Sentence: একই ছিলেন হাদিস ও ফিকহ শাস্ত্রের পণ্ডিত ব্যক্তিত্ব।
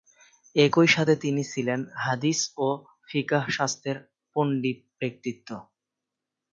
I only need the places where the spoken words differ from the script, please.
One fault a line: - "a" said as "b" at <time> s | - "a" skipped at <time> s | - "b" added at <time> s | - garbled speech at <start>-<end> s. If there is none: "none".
- "সাথে তিনি" added at 0.9 s